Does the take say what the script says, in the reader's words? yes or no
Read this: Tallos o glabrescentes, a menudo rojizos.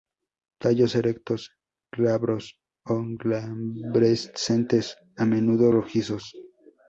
no